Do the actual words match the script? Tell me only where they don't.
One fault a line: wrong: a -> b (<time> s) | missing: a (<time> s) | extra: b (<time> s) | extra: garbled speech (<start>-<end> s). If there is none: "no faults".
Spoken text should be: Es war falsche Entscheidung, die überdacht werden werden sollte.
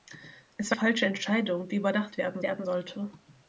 no faults